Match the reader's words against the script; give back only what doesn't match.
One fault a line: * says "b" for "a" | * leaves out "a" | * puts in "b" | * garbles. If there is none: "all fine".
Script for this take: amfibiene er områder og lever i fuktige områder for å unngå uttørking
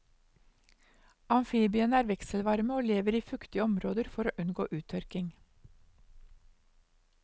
* says "vekselvarme" for "områder"